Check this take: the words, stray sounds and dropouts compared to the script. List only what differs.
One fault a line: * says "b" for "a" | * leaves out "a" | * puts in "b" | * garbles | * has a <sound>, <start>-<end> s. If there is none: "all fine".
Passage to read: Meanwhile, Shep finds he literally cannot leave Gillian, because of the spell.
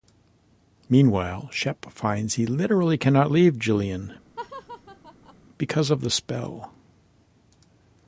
* has a laugh, 4.4-5.4 s